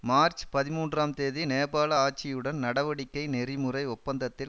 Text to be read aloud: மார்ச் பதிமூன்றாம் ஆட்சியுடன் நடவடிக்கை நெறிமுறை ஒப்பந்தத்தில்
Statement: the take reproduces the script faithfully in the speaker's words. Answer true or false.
false